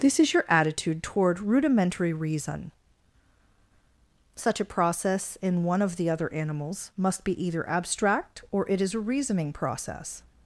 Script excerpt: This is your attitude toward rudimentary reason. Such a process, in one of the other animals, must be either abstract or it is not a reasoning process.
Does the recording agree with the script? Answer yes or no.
no